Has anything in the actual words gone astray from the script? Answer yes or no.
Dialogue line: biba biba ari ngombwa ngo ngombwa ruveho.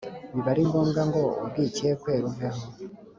yes